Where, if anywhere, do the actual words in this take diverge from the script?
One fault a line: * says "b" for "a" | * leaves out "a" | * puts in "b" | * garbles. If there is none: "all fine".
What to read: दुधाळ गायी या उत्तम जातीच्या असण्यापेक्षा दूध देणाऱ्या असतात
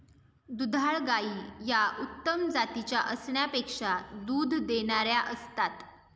all fine